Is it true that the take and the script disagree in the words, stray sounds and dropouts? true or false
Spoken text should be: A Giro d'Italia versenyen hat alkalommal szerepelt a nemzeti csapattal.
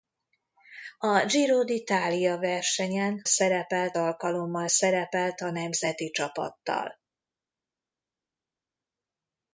true